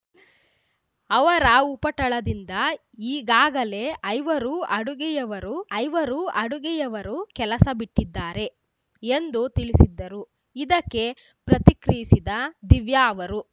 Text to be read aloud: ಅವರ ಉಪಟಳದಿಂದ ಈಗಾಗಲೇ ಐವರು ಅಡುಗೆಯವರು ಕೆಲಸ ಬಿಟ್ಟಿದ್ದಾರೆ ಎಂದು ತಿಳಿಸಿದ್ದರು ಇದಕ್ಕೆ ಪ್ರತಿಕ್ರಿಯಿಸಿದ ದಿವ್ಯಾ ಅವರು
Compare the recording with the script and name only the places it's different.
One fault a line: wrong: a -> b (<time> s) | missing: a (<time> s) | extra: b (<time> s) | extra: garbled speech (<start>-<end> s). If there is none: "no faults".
extra: ಐವರು ಅಡುಗೆಯವರು (5.8 s)